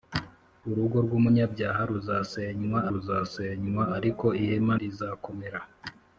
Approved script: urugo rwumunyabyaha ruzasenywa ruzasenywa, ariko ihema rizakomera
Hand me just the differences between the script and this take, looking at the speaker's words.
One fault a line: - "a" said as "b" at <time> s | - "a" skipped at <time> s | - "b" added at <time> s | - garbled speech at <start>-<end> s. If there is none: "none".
none